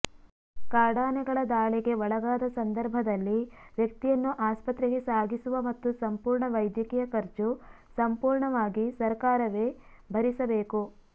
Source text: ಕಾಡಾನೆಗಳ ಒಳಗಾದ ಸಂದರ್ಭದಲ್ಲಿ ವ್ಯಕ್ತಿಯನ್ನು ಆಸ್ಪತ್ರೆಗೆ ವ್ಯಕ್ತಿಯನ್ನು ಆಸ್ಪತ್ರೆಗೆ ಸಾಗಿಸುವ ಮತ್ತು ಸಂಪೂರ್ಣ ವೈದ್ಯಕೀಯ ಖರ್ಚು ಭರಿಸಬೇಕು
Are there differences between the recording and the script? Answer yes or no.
yes